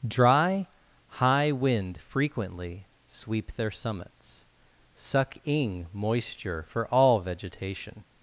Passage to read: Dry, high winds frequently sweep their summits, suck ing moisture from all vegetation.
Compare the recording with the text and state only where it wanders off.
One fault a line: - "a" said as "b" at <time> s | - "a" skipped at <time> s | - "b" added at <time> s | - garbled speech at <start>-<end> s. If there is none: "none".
- "winds" said as "wind" at 1.5 s
- "from" said as "for" at 6.7 s